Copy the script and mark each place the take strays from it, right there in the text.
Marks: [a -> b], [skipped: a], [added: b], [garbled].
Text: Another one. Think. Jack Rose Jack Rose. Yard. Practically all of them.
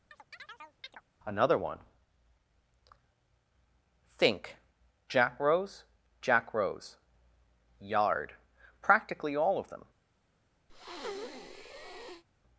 Another one. Think. Jack Rose Jack Rose. Yard. Practically all of them.